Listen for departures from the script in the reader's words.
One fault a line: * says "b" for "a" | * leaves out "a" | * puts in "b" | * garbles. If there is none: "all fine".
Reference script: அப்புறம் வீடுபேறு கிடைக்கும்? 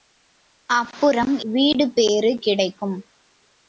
all fine